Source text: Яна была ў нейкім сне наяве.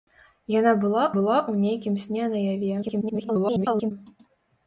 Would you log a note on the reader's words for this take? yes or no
yes